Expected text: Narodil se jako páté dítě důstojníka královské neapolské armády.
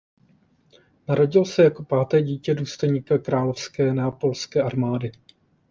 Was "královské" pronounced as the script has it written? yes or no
yes